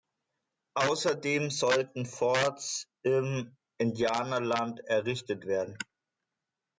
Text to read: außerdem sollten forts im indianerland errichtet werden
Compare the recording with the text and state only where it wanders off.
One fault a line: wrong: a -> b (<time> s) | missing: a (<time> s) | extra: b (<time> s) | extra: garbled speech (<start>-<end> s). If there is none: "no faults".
no faults